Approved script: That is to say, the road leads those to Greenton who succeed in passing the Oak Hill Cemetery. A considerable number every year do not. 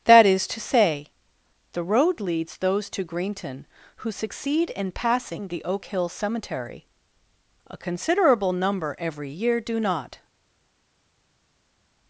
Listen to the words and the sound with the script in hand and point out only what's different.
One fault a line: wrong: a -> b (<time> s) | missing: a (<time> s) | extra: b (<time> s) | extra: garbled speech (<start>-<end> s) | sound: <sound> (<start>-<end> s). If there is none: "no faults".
no faults